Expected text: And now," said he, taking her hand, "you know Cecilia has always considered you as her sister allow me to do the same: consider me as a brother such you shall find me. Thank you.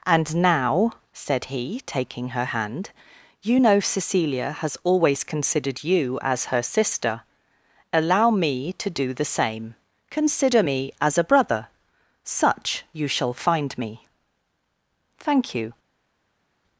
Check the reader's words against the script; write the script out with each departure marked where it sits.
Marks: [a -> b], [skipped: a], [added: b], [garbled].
And now," said he, taking her hand, "you know Cecilia has always considered you as her sister allow me to do the same: consider me as a brother such you shall find me. Thank you.